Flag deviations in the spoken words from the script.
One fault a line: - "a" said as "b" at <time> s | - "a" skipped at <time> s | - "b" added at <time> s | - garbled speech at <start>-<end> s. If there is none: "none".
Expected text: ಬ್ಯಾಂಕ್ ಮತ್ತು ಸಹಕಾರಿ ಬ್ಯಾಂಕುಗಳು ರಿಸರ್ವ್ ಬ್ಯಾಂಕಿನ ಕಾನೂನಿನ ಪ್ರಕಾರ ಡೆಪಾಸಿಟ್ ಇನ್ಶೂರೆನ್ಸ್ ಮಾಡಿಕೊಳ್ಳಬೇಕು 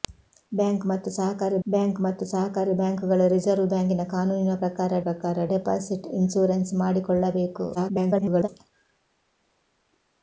- "ಬ್ಯಾಂಕ್ ಮತ್ತು ಸಹಕಾರಿ" added at 1.7 s
- "ಪ್ರಕಾರ" added at 5.1 s
- garbled speech at 7.7-8.5 s